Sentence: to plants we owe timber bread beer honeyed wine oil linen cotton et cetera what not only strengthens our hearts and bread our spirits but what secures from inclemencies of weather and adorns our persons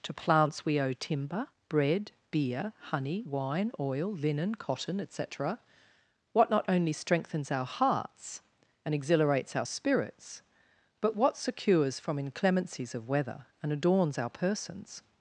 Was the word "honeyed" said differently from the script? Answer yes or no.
yes